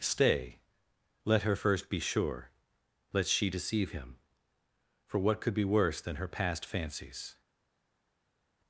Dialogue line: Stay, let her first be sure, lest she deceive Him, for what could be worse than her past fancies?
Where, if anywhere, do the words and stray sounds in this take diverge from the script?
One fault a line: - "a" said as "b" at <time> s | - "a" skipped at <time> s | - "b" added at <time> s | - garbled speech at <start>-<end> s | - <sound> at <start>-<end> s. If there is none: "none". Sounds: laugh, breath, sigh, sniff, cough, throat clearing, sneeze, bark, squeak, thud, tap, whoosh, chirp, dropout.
none